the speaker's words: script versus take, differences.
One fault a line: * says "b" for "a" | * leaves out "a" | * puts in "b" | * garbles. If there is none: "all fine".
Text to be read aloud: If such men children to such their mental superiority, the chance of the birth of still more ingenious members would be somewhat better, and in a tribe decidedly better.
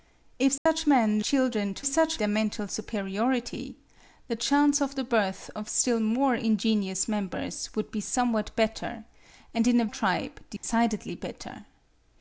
all fine